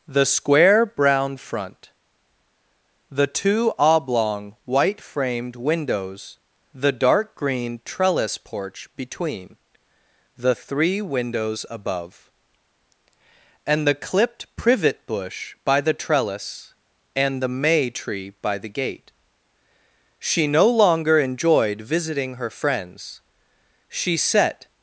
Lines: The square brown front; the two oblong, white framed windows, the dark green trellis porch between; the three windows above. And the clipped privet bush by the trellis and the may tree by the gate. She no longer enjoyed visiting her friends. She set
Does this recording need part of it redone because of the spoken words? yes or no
no